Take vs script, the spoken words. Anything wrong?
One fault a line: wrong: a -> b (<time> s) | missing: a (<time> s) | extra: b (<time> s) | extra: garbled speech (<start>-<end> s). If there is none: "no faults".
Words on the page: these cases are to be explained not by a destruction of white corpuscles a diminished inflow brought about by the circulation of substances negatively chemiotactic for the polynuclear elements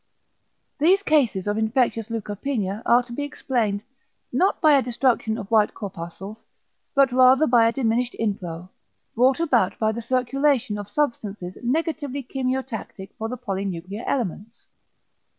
extra: of infectious leukopenia (1.4 s)
extra: but rather by (7.0 s)